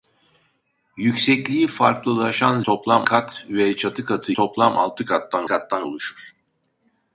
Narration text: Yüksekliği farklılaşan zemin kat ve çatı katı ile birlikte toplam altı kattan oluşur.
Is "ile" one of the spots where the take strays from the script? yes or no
yes